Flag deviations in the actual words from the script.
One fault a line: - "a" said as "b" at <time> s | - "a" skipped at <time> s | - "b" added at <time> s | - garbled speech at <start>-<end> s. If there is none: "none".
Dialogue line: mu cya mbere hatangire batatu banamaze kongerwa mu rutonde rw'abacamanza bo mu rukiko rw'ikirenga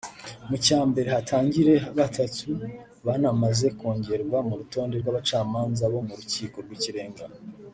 none